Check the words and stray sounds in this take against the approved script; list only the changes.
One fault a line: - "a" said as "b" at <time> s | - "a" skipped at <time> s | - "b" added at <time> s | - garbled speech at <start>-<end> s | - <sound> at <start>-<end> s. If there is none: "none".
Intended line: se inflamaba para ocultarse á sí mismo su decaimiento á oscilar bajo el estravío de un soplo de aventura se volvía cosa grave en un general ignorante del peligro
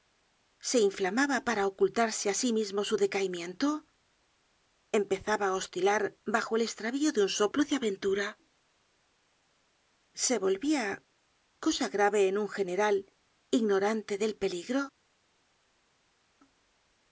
- "empezaba" added at 5.0 s